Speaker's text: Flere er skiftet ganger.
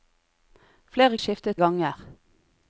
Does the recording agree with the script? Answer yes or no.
yes